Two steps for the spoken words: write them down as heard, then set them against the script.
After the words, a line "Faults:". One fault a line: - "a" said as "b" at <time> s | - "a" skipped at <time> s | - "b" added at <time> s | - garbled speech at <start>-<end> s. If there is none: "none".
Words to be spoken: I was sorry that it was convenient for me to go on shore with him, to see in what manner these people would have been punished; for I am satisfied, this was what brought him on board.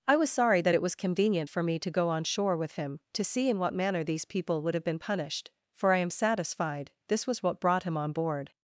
I was sorry that it was convenient for me to go on shore with him, to see in what manner these people would have been punished; for I am satisfied, this was what brought him on board.
Faults:
none